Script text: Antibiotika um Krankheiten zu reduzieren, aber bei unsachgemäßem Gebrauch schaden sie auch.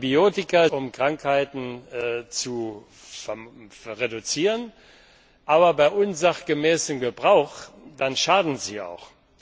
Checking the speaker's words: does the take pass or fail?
pass